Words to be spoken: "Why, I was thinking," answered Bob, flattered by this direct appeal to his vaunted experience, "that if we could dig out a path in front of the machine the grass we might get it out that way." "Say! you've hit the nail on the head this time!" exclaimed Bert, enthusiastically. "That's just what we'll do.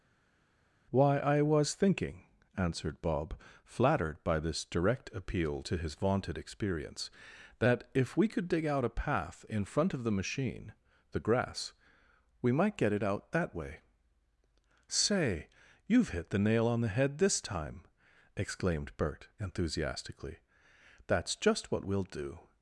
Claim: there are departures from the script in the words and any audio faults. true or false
false